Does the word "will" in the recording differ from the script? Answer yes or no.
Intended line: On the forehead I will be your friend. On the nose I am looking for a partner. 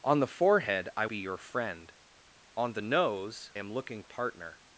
yes